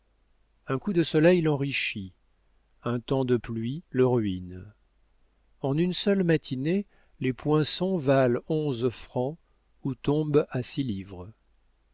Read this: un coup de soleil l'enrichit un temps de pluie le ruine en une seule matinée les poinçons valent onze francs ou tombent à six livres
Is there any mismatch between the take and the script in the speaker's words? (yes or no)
no